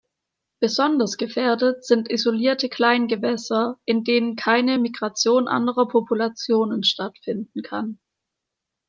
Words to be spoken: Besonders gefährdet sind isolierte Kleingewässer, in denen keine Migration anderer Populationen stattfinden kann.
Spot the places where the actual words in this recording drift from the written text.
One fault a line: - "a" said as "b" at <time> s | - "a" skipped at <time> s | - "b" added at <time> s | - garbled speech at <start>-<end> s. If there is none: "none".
none